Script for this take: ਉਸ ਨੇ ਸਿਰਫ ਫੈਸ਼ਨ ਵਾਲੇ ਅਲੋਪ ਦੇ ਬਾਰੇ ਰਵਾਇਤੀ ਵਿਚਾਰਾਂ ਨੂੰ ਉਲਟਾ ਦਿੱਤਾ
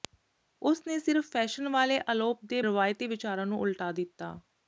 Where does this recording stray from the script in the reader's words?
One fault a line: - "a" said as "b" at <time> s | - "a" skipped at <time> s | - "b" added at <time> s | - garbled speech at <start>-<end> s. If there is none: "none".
- "ਬਾਰੇ" skipped at 2.6 s